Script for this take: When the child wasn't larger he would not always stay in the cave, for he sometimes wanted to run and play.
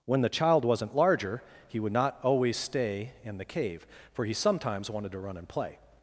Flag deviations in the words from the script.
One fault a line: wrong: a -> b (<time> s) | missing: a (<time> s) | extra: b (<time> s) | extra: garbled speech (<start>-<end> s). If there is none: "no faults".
no faults